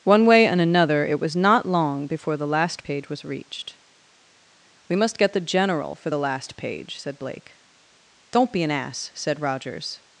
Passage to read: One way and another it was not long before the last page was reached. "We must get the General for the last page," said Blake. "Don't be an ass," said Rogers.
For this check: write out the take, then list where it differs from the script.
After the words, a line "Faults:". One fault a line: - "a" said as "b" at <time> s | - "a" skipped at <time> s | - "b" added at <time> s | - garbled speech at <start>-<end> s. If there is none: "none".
One way and another it was not long before the last page was reached. "We must get the General for the last page," said Blake. "Don't be an ass," said Rogers.
Faults:
none